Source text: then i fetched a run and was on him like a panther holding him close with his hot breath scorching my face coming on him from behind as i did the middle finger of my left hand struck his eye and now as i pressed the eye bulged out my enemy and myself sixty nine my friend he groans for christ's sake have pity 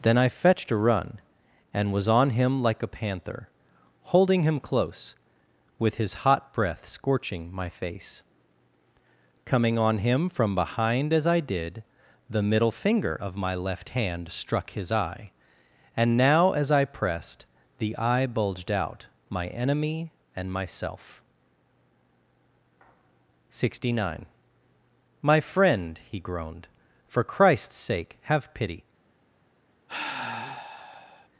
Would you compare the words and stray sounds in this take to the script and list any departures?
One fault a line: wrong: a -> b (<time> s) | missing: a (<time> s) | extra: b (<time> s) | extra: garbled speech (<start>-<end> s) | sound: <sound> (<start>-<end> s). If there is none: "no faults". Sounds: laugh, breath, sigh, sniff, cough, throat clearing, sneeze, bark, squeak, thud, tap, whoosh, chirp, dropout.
wrong: groans -> groaned (26.2 s)
sound: sigh (29.9-31.3 s)